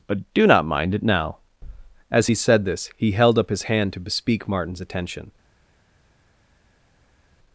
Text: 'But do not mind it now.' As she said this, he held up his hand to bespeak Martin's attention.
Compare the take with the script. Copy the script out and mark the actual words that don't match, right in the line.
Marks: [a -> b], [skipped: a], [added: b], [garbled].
'But do not mind it now.' As [she -> he] said this, he held up his hand to bespeak Martin's attention.